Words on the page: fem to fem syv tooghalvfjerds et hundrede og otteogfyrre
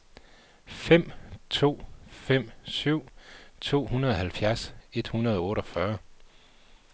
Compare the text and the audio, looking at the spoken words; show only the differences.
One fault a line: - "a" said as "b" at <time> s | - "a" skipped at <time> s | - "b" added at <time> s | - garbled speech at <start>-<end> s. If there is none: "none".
none